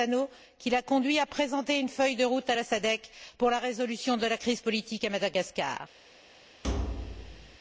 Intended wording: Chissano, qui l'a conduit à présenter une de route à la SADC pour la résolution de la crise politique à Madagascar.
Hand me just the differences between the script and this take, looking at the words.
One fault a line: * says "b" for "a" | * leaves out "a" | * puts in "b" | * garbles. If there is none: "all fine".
* puts in "feuille"